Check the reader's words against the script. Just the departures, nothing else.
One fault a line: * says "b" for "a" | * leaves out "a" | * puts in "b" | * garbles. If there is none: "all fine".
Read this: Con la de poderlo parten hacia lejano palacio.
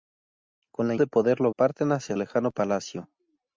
all fine